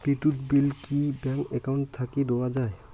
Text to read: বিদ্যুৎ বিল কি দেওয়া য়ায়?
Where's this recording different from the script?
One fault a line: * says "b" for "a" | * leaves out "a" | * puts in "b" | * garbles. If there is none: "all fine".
* puts in "ব্যাংক একাউন্ট থাকি"